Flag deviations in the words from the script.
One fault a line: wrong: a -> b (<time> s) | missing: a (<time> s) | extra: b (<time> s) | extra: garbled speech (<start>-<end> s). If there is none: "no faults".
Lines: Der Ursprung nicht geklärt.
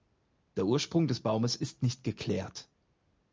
extra: des Baumes ist (1.1 s)